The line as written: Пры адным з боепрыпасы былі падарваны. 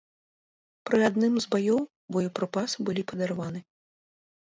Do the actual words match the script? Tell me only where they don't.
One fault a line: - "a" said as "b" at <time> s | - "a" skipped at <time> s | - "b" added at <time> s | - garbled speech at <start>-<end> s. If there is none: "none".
- "баёў" added at 1.6 s